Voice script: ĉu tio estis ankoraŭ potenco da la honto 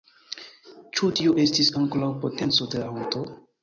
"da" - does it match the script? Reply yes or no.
no